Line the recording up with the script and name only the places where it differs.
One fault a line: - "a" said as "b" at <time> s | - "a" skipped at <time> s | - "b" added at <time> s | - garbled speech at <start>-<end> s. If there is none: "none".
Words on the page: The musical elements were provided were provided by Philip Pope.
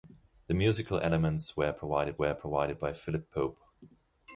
none